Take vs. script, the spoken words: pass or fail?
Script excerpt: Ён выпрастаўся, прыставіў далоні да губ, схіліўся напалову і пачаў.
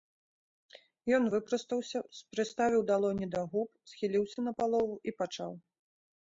pass